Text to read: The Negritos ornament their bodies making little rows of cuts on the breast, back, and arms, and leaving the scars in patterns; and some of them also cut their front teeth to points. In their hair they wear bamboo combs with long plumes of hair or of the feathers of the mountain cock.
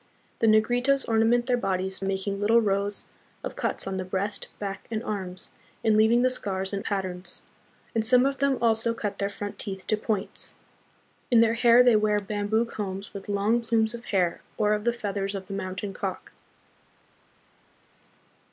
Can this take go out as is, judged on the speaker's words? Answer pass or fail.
pass